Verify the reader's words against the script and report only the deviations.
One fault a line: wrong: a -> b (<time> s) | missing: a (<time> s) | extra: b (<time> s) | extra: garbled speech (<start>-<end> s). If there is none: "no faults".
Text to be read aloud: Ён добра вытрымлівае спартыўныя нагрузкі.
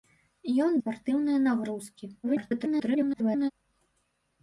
missing: добра вытрымлівае (0.7 s)
extra: garbled speech (2.2-3.5 s)